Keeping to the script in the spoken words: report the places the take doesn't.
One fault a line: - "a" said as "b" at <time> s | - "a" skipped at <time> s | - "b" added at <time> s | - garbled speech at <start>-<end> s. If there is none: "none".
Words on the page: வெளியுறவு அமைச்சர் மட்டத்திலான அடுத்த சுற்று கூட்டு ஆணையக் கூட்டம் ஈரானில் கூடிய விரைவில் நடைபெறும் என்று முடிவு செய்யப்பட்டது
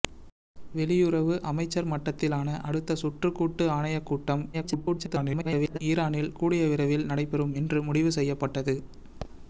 - garbled speech at 4.5-5.8 s